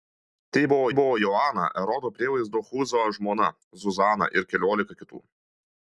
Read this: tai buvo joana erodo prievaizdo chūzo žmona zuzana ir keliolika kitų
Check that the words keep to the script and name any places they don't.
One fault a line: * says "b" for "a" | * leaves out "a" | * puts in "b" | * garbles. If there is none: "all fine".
* puts in "buvo"